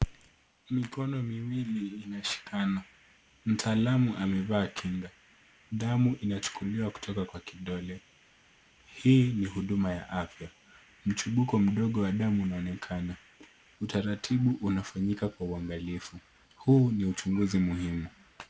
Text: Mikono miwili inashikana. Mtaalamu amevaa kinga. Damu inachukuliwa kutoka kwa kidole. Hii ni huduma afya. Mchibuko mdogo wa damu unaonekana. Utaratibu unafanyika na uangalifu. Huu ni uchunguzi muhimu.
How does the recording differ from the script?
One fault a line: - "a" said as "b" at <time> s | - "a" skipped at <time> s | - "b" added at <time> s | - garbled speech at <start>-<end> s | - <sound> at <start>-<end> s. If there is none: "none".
- "ya" added at 9.9 s
- "na" said as "kwa" at 15.3 s